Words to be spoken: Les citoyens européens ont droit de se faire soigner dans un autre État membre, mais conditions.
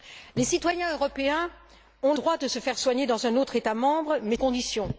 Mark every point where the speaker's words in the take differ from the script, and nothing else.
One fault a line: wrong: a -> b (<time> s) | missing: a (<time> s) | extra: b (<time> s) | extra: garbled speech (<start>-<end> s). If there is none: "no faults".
no faults